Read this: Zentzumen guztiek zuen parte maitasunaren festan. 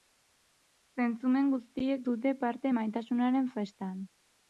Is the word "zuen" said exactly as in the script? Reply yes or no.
no